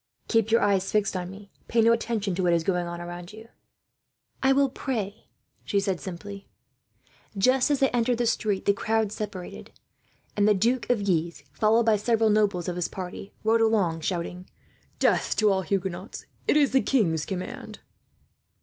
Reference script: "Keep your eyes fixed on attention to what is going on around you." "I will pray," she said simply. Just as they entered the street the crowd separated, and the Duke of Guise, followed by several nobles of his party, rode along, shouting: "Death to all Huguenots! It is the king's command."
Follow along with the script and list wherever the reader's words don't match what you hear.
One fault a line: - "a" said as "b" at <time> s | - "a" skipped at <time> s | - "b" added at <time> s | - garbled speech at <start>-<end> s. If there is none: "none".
- "me Pay no" added at 1.3 s